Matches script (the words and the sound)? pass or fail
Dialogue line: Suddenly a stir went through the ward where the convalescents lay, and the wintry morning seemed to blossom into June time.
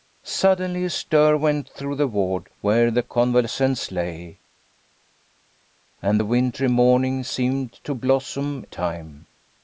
fail